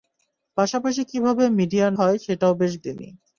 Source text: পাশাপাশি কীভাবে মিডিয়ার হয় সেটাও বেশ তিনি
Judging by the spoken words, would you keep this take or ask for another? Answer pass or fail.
pass